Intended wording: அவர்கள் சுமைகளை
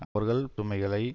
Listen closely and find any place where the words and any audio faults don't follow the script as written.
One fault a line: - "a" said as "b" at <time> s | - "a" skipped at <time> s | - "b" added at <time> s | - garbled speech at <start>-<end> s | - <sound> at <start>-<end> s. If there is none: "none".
- dropout at 0.0-0.2 s